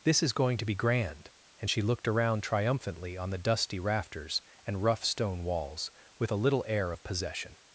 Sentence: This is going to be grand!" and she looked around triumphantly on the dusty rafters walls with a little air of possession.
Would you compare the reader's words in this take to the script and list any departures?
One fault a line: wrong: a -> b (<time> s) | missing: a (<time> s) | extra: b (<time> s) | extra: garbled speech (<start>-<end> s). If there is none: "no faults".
extra: and rough stone (4.7 s)